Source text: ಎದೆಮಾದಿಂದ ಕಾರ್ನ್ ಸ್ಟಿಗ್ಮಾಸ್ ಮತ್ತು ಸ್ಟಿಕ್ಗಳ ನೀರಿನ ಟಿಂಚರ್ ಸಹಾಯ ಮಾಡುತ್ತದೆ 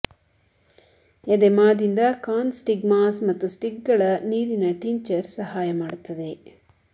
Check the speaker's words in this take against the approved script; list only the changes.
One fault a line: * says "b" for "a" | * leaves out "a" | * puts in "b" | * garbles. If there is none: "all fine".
all fine